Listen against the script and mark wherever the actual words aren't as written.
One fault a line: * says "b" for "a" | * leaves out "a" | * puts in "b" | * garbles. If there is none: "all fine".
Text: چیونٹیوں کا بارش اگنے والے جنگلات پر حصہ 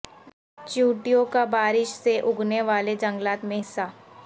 * puts in "سے"
* says "میں" for "پر"